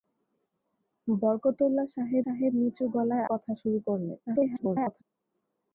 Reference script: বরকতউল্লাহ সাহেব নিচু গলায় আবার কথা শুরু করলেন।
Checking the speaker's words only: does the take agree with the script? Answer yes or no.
no